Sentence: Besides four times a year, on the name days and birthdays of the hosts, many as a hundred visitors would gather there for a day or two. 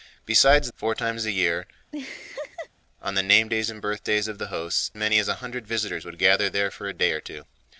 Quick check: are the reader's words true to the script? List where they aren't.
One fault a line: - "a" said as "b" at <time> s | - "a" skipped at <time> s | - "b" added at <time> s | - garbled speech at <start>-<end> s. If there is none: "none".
none